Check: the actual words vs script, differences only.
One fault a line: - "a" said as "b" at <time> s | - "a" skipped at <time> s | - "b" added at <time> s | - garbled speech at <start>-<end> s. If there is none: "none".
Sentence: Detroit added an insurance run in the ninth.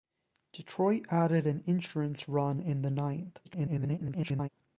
- garbled speech at 3.4-4.5 s